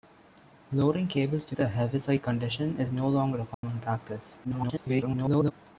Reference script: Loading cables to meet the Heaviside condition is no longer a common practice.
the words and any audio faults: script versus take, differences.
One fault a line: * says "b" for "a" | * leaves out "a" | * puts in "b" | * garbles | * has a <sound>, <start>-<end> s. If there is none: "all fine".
* leaves out "meet"
* has a dropout, 3.5-3.6 s
* garbles